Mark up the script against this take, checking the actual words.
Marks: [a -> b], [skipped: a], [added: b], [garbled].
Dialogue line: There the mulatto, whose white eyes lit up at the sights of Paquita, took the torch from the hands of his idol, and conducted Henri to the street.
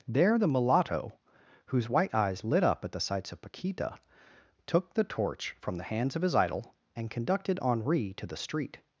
There the mulatto, whose white eyes lit up at the sights of Paquita, took the torch from the hands of his idol, and conducted Henri to the street.